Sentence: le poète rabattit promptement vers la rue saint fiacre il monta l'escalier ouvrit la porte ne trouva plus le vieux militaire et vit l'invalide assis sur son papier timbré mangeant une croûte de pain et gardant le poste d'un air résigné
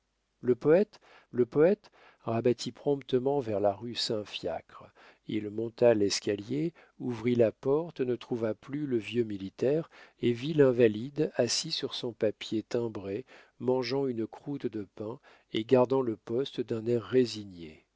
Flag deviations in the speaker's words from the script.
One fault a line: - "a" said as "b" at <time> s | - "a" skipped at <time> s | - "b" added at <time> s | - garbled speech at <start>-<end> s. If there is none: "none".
- "le poète" added at 1.3 s